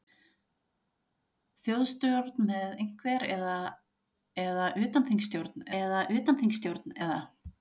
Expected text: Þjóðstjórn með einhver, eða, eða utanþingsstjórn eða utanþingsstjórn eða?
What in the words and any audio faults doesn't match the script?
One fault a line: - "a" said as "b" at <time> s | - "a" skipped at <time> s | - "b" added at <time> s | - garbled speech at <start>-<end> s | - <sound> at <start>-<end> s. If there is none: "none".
none